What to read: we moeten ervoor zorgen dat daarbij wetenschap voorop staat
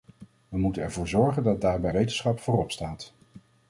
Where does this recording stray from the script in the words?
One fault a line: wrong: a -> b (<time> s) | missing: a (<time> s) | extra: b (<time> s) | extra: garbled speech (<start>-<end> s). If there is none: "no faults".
no faults